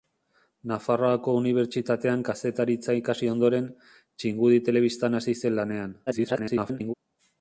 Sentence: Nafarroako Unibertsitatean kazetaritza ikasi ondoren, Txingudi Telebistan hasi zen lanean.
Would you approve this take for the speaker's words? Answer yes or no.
no